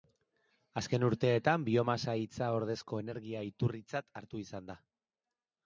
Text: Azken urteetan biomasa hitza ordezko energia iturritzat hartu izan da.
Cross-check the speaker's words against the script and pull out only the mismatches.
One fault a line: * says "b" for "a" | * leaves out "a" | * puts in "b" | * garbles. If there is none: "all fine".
all fine